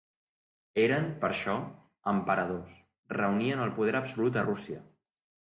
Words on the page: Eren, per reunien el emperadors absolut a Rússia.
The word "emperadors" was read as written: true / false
false